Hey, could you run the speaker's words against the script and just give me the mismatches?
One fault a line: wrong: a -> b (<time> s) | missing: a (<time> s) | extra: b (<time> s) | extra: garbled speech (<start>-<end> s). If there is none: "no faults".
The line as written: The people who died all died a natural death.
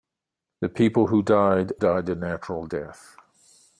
missing: all (1.7 s)